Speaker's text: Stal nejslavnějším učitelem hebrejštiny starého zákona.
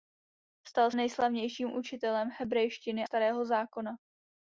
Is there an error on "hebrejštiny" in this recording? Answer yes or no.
no